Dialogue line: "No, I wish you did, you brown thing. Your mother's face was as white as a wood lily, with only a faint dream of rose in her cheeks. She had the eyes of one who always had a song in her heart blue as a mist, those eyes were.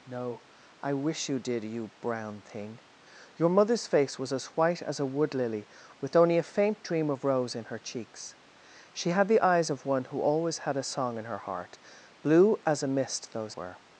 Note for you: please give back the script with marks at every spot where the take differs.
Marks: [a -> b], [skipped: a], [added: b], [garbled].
"No, I wish you did, you brown thing. Your mother's face was as white as a wood lily, with only a faint dream of rose in her cheeks. She had the eyes of one who always had a song in her heart blue as a mist, those [skipped: eyes] were.